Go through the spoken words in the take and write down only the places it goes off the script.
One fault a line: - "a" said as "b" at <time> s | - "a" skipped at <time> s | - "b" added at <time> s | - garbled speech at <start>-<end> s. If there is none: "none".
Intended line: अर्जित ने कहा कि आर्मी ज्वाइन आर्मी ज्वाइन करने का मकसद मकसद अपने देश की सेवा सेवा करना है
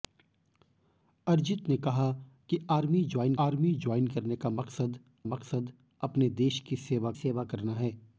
none